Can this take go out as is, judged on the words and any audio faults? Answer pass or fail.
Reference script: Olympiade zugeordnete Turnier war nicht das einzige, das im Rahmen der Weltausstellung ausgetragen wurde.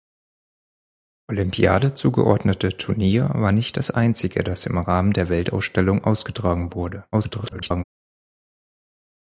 fail